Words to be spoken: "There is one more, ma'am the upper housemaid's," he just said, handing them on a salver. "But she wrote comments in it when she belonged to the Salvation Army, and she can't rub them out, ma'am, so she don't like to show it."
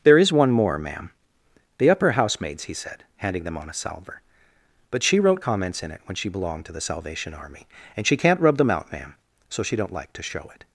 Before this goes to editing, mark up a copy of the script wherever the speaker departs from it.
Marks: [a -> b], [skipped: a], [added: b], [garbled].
"There is one more, ma'am the upper housemaid's," he [skipped: just] said, handing them on a salver. "But she wrote comments in it when she belonged to the Salvation Army, and she can't rub them out, ma'am, so she don't like to show it."